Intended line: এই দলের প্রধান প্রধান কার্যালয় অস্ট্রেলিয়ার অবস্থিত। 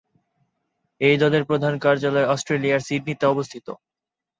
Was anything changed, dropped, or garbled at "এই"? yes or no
no